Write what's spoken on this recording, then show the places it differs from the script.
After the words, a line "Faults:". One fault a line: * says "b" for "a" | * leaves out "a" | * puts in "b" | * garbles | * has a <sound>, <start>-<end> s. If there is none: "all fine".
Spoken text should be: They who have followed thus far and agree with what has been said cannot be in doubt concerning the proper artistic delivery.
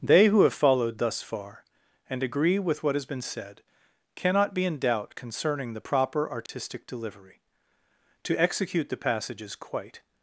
They who have followed thus far and agree with what has been said cannot be in doubt concerning the proper artistic delivery. To execute the passages quite
Faults:
* has a dropout, 6.5-6.5 s
* puts in "To execute the passages quite"